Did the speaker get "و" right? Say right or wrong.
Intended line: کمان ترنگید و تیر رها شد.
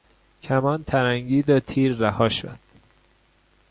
right